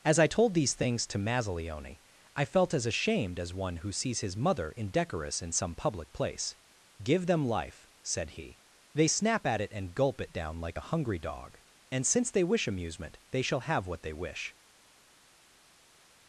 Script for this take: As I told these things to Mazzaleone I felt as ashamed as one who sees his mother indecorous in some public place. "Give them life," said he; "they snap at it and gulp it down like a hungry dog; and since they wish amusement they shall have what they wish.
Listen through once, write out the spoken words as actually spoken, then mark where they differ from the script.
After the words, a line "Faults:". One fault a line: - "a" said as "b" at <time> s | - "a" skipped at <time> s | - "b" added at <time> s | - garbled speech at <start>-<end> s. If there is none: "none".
As I told these things to Mazzaleone I felt as ashamed as one who sees his mother indecorous in some public place. "Give them life," said he; "they snap at it and gulp it down like a hungry dog; and since they wish amusement they shall have what they wish.
Faults:
none